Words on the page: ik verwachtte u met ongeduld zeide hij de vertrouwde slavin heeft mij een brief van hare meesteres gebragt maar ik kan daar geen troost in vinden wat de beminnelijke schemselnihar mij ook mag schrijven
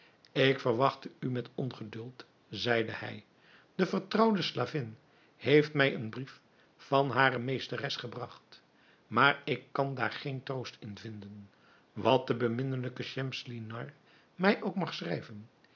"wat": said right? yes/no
yes